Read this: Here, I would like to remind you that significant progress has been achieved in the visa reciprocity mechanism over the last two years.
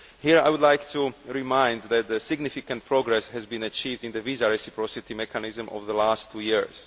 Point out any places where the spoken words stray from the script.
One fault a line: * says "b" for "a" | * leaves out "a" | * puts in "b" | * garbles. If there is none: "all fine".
all fine